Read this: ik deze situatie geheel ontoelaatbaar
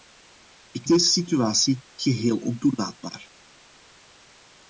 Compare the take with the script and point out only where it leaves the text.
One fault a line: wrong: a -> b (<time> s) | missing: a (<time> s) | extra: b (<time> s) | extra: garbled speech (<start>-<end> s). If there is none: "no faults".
no faults